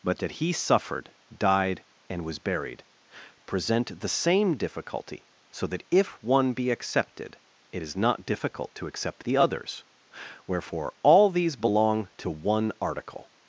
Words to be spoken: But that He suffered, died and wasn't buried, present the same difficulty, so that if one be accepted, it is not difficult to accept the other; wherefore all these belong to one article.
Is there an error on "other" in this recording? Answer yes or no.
yes